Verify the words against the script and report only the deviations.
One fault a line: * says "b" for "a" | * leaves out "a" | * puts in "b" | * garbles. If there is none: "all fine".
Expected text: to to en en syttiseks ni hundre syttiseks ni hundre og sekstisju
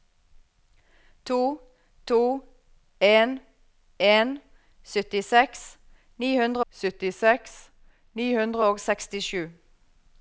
all fine